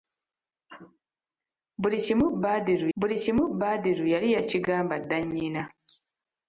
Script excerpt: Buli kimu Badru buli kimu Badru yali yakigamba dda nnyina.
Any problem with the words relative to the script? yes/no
no